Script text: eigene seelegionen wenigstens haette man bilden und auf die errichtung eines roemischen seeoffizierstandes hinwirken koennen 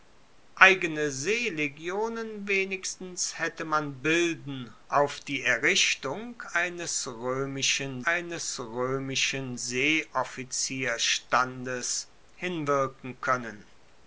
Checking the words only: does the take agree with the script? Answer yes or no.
no